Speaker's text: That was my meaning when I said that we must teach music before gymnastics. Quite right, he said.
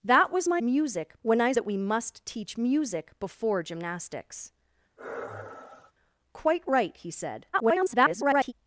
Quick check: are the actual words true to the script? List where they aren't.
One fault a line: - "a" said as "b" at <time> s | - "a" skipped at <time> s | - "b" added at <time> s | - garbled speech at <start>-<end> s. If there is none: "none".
- "meaning" said as "music" at 0.6 s
- "said" skipped at 1.5 s
- garbled speech at 7.5-8.5 s